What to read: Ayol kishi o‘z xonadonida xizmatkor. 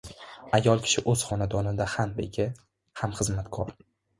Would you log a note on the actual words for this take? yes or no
yes